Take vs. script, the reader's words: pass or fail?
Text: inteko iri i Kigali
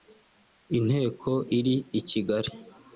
pass